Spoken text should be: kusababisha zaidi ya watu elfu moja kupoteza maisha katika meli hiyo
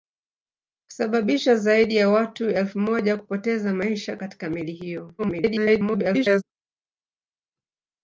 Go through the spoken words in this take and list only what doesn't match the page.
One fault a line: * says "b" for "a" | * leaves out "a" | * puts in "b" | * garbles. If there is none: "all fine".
* garbles